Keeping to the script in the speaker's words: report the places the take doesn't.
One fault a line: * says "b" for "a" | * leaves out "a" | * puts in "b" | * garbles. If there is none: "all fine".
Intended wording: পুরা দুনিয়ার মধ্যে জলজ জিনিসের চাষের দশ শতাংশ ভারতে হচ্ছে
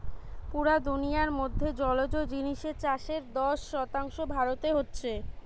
all fine